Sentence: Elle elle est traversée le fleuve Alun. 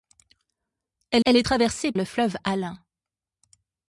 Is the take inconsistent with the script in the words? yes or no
no